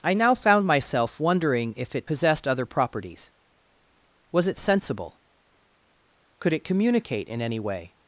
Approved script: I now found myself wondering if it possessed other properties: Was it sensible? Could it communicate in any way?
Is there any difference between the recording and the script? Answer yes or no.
no